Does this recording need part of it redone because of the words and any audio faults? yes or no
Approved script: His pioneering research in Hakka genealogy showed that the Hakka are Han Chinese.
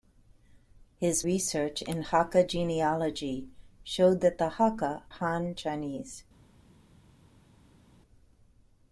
yes